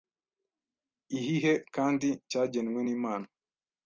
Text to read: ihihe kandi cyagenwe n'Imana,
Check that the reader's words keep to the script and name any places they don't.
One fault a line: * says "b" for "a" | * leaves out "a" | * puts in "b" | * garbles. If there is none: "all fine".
all fine